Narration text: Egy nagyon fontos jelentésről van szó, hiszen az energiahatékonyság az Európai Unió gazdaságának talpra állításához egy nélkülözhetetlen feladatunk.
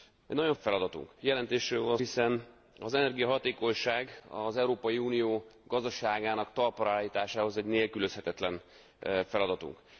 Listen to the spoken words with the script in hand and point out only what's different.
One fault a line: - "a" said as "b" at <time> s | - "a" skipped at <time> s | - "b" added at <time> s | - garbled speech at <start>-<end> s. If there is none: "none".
- "fontos" said as "feladatunk" at 0.6 s
- "szó" skipped at 2.0 s